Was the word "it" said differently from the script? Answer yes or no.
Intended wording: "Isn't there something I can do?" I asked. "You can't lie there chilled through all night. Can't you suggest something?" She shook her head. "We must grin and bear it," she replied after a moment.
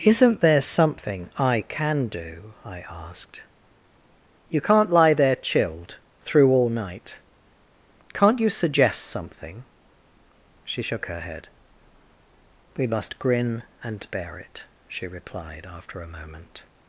no